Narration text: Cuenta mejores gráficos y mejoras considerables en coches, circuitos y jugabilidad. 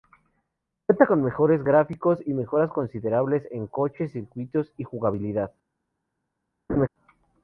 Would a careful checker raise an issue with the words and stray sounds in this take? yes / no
yes